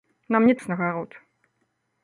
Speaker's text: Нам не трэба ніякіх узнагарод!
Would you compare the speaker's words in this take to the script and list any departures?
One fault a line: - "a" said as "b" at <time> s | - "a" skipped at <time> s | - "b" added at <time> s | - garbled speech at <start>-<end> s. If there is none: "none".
- "трэба ніякіх" skipped at 0.5 s